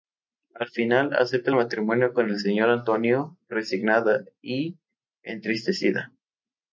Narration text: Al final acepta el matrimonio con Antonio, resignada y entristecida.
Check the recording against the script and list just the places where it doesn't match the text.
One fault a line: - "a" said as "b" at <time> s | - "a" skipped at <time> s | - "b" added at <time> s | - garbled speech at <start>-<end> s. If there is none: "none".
- "el Señor" added at 2.3 s